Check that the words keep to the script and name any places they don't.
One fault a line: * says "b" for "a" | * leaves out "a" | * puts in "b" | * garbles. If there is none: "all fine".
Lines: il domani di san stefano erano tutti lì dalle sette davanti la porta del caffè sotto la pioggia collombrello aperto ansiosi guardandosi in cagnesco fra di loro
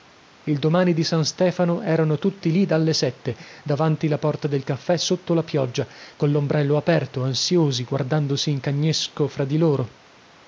all fine